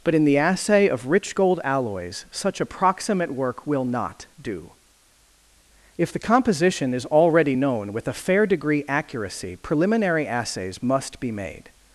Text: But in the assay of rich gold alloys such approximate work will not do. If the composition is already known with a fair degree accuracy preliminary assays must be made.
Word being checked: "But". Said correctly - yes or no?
yes